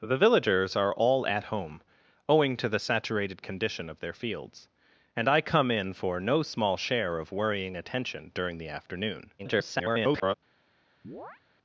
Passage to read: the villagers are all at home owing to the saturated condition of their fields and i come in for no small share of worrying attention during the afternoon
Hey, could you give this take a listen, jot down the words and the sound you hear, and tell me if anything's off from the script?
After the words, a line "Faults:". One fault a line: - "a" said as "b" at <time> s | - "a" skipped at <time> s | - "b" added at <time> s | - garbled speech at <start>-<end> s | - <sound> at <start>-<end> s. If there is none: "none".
the villagers are all at home owing to the saturated condition of their fields and i come in for no small share of worrying attention during the afternoon [garbled]
Faults:
- garbled speech at 9.4-10.3 s
- chirp at 11.0-11.4 s